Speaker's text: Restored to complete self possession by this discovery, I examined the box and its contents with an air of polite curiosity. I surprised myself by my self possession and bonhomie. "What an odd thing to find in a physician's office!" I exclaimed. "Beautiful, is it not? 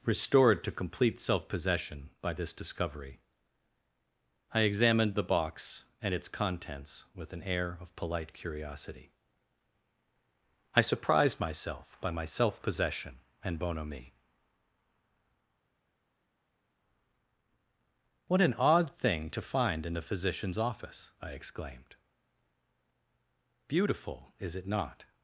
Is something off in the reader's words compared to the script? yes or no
yes